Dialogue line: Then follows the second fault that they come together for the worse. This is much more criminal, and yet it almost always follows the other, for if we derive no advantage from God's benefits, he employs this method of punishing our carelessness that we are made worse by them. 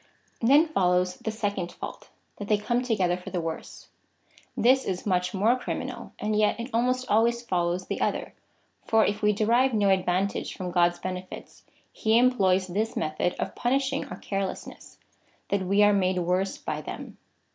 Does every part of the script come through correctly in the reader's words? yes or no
yes